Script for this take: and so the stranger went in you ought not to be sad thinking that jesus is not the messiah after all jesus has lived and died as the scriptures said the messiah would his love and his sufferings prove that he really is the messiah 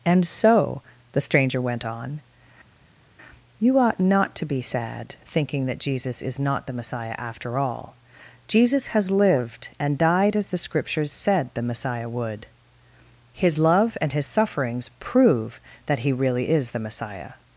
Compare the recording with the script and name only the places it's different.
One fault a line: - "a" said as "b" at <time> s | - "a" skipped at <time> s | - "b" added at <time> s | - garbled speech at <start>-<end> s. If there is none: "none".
- "in" said as "on" at 1.9 s